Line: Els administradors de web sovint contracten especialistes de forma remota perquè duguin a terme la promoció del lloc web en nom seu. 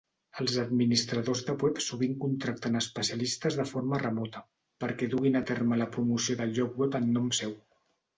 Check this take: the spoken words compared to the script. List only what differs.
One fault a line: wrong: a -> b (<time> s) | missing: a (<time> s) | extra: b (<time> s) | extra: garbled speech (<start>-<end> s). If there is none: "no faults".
no faults